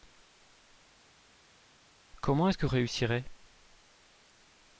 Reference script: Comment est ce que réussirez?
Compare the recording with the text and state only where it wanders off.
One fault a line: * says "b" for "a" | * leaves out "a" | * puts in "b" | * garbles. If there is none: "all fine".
all fine